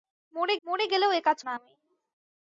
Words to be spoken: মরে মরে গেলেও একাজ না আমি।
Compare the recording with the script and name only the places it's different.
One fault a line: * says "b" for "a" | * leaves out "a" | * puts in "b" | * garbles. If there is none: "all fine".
all fine